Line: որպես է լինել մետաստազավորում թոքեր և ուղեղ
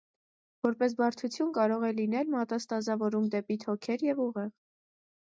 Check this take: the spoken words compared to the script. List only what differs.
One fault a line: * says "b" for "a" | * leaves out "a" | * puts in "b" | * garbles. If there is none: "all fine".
* puts in "բարդություն կարող"
* puts in "դեպի"